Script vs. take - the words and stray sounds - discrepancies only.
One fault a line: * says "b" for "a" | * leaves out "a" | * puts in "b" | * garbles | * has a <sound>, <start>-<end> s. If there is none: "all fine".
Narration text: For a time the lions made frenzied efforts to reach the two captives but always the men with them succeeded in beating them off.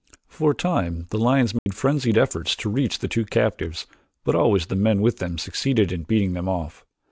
* has a dropout, 1.6-1.7 s